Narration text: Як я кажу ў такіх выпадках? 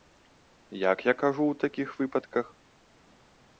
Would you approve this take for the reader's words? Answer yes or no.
yes